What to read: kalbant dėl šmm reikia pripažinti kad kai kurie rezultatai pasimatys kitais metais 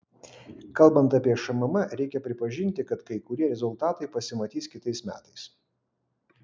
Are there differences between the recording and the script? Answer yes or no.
yes